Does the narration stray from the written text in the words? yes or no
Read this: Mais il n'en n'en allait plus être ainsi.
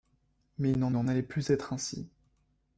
no